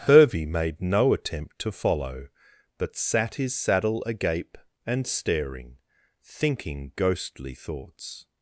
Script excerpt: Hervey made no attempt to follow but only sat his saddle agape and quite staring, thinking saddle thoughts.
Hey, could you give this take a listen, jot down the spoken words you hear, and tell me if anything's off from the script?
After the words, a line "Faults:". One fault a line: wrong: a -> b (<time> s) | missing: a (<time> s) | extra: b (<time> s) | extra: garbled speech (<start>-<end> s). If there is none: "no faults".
Hervey made no attempt to follow but sat his saddle agape and staring, thinking ghostly thoughts.
Faults:
missing: only (3.0 s)
missing: quite (5.1 s)
wrong: saddle -> ghostly (7.0 s)